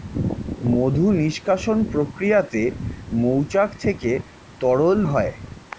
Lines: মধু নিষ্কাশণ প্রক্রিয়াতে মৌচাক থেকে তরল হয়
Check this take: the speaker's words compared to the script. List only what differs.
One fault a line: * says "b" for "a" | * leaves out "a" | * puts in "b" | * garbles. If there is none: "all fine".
all fine